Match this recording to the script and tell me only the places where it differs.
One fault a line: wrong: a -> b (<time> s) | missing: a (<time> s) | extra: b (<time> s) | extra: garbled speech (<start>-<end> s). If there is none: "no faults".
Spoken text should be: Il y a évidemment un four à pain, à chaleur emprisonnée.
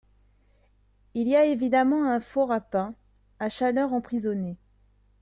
no faults